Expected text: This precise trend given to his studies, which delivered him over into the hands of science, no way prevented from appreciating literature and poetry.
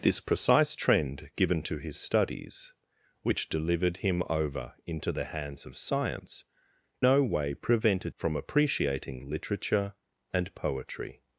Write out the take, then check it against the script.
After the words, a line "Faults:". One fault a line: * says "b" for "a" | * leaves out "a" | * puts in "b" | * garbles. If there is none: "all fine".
This precise trend given to his studies, which delivered him over into the hands of science, no way prevented from appreciating literature and poetry.
Faults:
all fine